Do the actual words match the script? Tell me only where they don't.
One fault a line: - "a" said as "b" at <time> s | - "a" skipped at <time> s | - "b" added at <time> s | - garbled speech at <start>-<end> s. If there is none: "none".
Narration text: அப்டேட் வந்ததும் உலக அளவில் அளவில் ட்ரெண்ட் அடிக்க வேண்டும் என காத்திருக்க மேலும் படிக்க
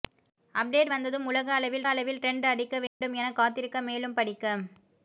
none